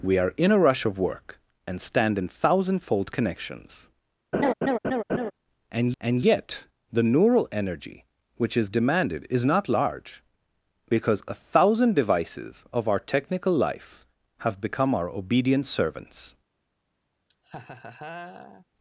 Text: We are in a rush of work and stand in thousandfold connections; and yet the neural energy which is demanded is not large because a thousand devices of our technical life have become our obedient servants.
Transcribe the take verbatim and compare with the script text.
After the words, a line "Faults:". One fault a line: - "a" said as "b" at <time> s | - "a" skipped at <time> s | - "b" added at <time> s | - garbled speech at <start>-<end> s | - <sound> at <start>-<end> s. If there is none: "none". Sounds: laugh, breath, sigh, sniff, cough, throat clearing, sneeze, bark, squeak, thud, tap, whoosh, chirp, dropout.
We are in a rush of work and stand in thousandfold connections; and and yet the neural energy which is demanded is not large because a thousand devices of our technical life have become our obedient servants.
Faults:
- laugh at 4.3-5.3 s
- "and" added at 6.0 s
- laugh at 17.3-18.7 s